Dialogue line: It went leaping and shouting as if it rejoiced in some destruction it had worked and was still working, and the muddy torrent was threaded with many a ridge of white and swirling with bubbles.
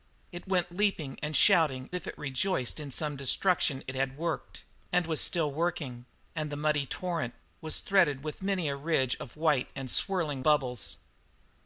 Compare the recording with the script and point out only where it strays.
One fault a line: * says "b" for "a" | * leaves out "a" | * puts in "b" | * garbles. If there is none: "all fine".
* leaves out "as"
* leaves out "with"